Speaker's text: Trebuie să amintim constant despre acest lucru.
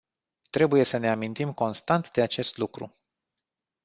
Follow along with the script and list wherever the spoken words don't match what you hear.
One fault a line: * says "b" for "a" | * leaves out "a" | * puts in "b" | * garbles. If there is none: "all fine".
* puts in "ne"
* says "de" for "despre"